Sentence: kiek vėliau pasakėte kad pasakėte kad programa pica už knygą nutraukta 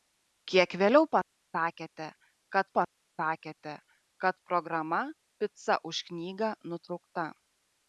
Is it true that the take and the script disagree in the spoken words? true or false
false